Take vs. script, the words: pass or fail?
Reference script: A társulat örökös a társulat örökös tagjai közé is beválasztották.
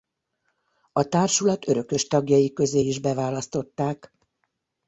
fail